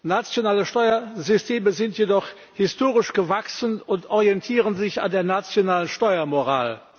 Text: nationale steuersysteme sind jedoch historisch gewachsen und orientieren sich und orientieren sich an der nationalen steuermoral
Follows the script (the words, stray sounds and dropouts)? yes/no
no